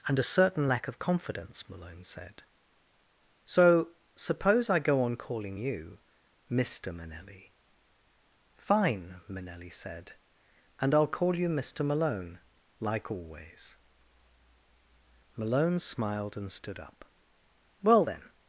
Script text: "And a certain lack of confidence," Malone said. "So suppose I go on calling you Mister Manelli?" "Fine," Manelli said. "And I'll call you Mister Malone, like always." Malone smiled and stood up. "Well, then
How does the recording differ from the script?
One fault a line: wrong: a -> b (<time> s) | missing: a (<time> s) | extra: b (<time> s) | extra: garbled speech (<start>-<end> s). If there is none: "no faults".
no faults